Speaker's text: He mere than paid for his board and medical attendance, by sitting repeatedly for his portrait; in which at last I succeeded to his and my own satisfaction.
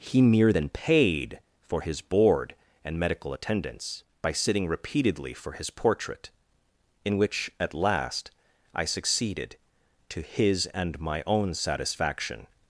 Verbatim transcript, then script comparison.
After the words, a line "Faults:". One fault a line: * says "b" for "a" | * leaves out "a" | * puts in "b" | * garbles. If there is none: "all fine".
He mere than paid for his board and medical attendance, by sitting repeatedly for his portrait; in which at last I succeeded to his and my own satisfaction.
Faults:
all fine